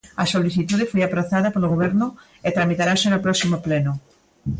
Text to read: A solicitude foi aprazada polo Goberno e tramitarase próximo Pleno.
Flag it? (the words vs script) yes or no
yes